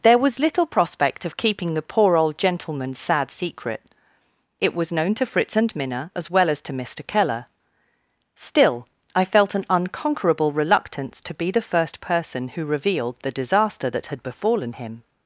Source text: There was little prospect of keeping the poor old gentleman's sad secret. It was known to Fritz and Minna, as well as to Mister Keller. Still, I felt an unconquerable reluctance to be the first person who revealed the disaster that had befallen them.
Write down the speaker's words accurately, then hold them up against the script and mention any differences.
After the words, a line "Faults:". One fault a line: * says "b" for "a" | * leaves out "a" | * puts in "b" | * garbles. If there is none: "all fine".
There was little prospect of keeping the poor old gentleman's sad secret. It was known to Fritz and Minna, as well as to Mister Keller. Still, I felt an unconquerable reluctance to be the first person who revealed the disaster that had befallen him.
Faults:
* says "him" for "them"